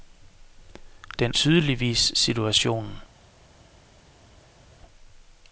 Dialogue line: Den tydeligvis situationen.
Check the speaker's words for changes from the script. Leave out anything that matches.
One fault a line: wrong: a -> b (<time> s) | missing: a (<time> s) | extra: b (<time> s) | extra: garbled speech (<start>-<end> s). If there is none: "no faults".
no faults